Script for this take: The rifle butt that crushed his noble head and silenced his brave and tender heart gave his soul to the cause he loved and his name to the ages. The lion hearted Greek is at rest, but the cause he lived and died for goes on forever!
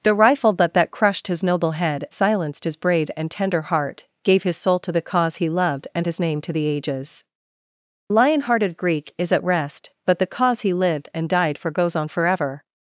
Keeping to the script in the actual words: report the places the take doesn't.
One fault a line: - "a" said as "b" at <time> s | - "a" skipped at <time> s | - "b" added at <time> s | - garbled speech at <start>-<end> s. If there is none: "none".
- "and" skipped at 2.1 s
- "The" skipped at 7.2 s